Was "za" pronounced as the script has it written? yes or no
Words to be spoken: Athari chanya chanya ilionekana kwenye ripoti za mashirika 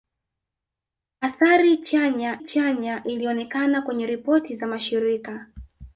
yes